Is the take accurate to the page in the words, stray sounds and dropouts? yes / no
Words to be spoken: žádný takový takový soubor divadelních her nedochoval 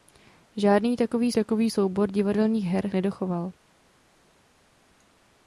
yes